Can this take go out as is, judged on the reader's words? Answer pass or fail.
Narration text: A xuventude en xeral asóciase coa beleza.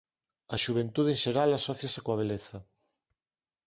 pass